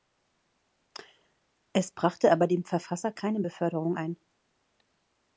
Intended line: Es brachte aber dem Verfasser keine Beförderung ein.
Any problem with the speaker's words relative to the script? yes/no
no